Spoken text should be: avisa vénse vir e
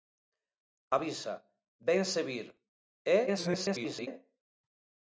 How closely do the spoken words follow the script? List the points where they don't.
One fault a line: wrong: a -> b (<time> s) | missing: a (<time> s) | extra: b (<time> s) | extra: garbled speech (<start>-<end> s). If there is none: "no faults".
extra: garbled speech (3.3-4.1 s)